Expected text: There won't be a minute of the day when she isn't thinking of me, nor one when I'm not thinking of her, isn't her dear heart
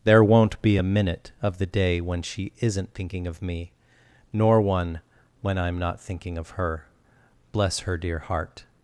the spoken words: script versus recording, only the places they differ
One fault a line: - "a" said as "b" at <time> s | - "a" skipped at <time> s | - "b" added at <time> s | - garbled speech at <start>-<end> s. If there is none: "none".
- "isn't" said as "bless" at 7.5 s